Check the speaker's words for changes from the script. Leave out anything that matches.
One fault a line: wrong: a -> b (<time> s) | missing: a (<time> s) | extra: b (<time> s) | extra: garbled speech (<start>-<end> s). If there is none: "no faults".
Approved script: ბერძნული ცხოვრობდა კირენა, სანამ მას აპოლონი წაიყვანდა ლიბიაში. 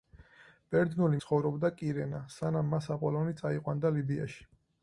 no faults